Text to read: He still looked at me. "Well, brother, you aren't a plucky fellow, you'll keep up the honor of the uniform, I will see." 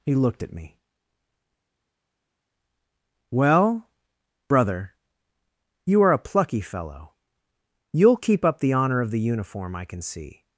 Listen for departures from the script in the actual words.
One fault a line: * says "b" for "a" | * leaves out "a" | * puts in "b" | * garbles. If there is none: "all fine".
* leaves out "still"
* says "are" for "aren't"
* says "can" for "will"